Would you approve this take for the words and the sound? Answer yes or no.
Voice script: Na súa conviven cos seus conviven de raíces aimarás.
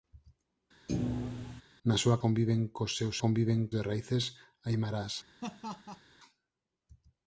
no